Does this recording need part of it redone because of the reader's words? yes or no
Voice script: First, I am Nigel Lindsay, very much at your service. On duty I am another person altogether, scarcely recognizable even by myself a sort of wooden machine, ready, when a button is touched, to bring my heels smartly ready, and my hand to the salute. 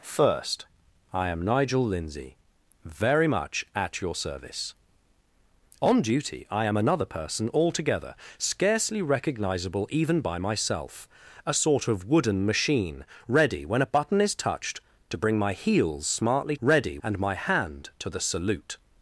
no